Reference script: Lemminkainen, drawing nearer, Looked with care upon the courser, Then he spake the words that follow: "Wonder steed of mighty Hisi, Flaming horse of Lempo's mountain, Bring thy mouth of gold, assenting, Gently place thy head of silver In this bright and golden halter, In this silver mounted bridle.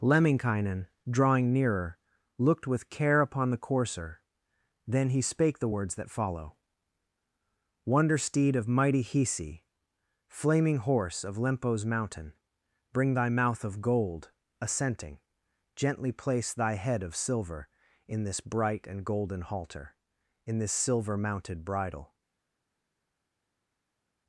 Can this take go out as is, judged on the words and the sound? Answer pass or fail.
pass